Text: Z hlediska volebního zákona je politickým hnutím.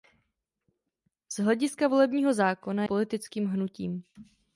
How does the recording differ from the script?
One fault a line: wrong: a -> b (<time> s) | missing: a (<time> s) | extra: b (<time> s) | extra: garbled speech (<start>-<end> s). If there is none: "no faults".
missing: je (2.9 s)